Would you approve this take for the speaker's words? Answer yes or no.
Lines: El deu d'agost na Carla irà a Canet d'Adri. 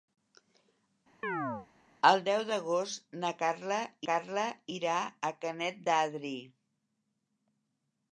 no